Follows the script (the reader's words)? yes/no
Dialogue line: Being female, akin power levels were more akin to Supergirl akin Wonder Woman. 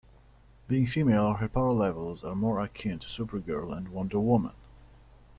no